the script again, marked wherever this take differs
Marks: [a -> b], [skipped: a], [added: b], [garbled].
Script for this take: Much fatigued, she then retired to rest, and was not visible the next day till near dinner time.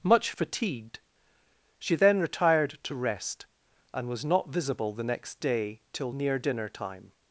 Much fatigued, she then retired to rest, and was not visible the next day till near dinner time.